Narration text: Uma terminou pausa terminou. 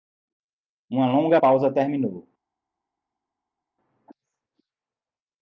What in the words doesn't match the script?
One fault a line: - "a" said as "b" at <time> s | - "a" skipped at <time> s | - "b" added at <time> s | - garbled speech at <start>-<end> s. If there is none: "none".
- "terminou" said as "longa" at 1.1 s